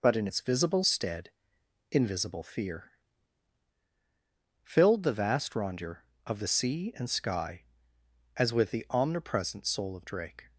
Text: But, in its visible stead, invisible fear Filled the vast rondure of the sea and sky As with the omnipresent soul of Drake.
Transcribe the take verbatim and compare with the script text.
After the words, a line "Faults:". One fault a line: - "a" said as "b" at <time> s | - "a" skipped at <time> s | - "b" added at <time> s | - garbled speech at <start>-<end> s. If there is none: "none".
But, in its visible stead, invisible fear Filled the vast rondure of the sea and sky As with the omnipresent soul of Drake.
Faults:
none